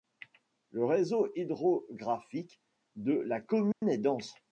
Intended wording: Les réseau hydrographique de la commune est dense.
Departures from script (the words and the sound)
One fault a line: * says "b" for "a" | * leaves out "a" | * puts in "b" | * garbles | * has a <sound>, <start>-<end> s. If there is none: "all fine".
* says "Le" for "Les"
* has a dropout, 3.7-3.8 s